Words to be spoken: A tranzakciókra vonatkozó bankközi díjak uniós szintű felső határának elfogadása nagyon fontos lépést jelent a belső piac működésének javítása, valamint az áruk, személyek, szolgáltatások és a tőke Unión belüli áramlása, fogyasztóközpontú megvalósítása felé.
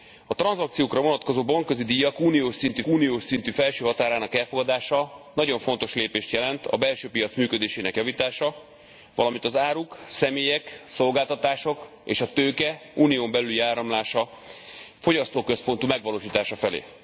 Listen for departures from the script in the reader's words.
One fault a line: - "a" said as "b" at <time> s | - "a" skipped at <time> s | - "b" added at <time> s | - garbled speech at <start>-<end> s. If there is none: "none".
- "uniós szintű" added at 2.9 s